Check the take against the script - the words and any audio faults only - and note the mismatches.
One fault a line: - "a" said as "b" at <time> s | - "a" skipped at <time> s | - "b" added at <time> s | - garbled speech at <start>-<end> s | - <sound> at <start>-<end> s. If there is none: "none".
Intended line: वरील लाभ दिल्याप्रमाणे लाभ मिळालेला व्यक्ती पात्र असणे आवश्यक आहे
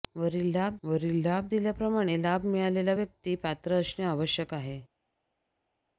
- "वरील लाभ" added at 0.8 s